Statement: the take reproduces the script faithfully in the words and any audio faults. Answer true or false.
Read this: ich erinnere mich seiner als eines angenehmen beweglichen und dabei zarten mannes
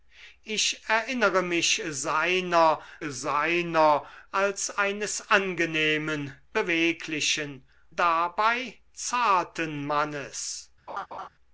false